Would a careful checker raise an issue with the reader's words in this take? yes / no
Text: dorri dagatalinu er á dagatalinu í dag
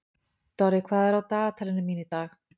yes